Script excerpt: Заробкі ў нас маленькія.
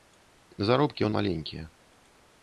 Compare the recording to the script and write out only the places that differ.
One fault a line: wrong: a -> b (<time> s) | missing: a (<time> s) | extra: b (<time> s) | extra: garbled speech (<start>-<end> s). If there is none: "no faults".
missing: нас (1.1 s)